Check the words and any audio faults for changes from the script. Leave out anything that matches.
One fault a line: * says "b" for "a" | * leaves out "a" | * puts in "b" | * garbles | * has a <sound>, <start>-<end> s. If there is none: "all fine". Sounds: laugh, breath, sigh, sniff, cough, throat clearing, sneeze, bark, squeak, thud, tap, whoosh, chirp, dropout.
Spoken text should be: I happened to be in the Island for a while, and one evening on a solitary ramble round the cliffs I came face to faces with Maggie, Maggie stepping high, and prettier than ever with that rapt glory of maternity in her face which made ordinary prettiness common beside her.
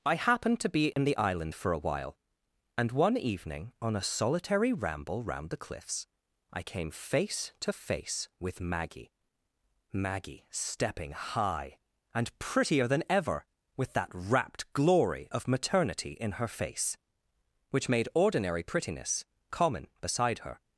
* has a dropout, 0.9-1.0 s
* says "face" for "faces"